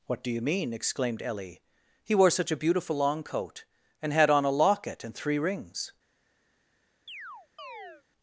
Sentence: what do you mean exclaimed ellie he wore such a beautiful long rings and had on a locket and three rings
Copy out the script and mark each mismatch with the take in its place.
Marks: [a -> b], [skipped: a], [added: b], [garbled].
what do you mean exclaimed ellie he wore such a beautiful long [rings -> coat] and had on a locket and three rings